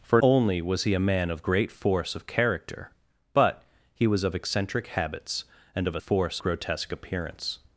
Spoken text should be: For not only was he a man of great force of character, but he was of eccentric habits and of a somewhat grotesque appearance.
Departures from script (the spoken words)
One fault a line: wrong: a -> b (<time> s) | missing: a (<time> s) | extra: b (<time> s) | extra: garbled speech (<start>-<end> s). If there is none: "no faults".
missing: not (0.2 s)
wrong: somewhat -> force (6.0 s)